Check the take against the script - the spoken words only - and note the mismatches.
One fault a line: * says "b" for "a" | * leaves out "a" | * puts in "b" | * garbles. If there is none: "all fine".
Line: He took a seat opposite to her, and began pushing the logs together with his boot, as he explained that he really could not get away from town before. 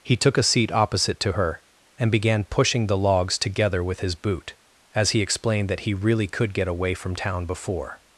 * leaves out "not"